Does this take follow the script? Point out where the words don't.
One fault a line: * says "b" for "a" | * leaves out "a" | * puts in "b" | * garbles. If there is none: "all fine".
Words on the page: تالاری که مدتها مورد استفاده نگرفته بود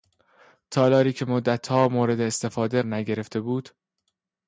all fine